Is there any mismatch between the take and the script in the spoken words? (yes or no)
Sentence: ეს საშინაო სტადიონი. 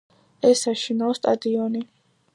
no